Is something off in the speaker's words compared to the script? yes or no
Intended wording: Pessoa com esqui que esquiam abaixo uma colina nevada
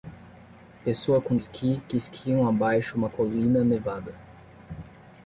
no